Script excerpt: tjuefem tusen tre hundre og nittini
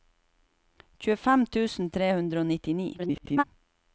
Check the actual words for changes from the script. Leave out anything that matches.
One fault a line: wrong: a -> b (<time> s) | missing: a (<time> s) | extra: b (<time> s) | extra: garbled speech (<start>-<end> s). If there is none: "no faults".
extra: garbled speech (3.0-3.4 s)